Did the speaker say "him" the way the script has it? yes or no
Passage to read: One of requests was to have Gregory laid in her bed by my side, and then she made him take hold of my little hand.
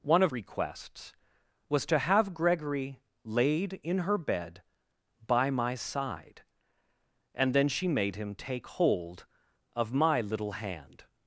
yes